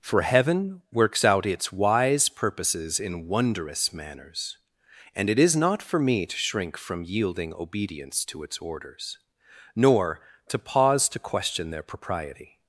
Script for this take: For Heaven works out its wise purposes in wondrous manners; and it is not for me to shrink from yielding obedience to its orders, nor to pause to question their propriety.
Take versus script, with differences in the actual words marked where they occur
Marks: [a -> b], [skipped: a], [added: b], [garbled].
For Heaven works out its wise purposes in wondrous manners; and it is not for me to shrink from yielding obedience to its orders, nor to pause to question their propriety.